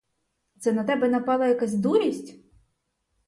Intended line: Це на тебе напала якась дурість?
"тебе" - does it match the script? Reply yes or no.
yes